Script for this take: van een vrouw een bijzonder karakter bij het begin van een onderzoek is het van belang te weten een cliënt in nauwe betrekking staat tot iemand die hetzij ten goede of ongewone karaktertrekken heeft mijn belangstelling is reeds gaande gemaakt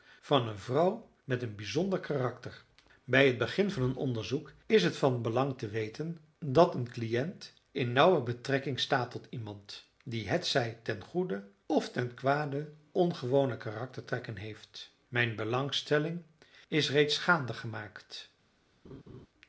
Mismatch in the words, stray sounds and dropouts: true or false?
true